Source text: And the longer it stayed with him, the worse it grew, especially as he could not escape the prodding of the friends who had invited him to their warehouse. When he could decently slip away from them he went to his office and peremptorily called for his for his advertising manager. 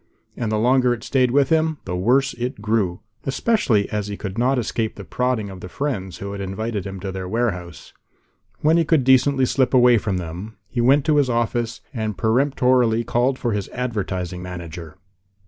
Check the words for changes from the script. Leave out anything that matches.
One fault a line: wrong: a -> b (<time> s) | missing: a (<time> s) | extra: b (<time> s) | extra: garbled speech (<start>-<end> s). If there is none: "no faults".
missing: for his (13.7 s)